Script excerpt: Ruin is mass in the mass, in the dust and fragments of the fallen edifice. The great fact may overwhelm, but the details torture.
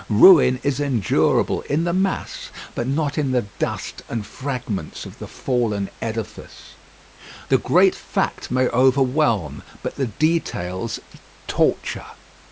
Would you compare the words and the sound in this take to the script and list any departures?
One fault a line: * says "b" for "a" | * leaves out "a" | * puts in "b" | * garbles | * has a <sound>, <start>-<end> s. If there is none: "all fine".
* says "endurable" for "mass"
* puts in "but not"